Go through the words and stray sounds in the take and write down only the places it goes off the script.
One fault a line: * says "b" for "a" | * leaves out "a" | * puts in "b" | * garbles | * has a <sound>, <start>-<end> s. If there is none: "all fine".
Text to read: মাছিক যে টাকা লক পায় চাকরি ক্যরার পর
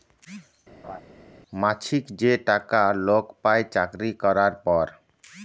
* has a laugh, 0.8-1.0 s